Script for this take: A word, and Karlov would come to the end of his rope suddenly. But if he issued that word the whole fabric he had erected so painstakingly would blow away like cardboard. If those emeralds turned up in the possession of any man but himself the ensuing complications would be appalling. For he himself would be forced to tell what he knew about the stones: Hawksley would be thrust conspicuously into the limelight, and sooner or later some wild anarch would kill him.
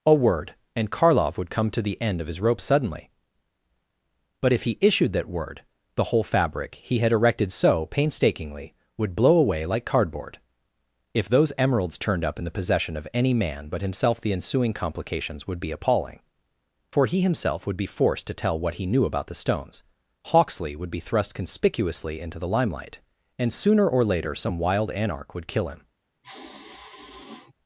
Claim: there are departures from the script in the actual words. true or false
false